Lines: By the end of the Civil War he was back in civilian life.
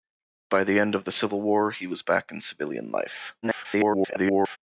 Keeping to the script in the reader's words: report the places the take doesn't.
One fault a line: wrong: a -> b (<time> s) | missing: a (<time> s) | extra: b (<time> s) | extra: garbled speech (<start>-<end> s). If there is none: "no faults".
extra: garbled speech (3.4-4.6 s)